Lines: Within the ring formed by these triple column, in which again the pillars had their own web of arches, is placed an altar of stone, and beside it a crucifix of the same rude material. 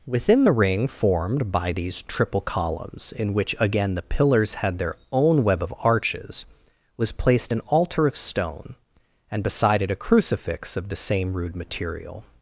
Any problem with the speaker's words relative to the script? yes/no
yes